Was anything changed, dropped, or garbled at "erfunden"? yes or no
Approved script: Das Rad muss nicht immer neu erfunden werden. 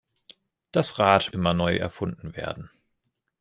no